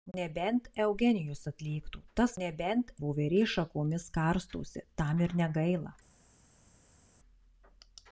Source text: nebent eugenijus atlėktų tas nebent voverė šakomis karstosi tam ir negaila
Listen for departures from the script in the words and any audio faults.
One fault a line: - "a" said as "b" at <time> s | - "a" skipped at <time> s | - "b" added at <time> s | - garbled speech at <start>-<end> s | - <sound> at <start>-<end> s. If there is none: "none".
none